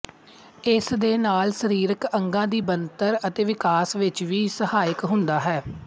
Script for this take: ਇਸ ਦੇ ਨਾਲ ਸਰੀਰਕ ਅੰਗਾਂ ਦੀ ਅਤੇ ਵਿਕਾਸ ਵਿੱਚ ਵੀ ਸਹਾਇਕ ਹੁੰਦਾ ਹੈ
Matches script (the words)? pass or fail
fail